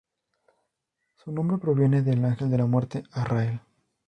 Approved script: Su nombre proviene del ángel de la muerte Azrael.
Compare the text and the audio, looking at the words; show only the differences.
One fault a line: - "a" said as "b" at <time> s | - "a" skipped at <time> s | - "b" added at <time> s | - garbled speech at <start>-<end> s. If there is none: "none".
none